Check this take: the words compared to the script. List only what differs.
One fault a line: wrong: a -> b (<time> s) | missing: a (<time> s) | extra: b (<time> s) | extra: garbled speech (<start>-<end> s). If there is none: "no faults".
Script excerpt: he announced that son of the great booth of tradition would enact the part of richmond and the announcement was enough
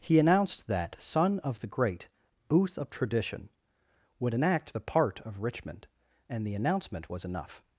no faults